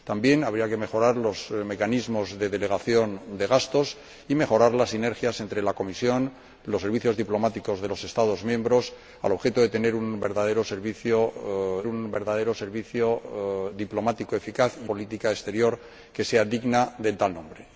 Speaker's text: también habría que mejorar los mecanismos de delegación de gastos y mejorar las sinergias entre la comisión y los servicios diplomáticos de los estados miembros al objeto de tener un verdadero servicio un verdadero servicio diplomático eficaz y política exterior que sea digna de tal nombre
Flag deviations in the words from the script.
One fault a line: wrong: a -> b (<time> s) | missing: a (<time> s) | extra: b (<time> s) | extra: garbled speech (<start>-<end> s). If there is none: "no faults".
no faults